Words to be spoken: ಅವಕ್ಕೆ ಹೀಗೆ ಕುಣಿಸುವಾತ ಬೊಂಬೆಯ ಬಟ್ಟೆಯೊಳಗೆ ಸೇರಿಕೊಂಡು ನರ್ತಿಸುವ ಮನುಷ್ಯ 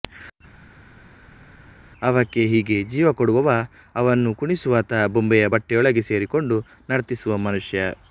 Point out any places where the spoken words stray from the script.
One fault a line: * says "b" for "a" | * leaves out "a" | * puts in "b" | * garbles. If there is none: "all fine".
* puts in "ಜೀವ ಕೊಡುವವ ಅವನ್ನು"